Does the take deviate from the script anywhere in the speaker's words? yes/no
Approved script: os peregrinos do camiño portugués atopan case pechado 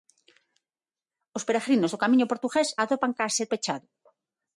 no